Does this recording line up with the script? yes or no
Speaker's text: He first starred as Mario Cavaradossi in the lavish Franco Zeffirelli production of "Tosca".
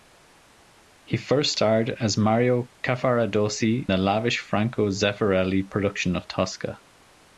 no